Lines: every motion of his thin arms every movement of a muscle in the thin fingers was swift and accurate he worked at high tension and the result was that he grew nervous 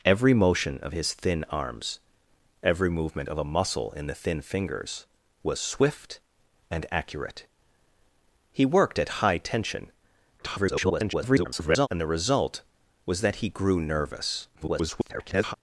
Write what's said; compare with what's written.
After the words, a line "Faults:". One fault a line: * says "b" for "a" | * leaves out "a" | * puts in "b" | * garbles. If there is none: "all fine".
every motion of his thin arms every movement of a muscle in the thin fingers was swift and accurate he worked at high tension [garbled] and the result was that he grew nervous [garbled]
Faults:
* garbles
* garbles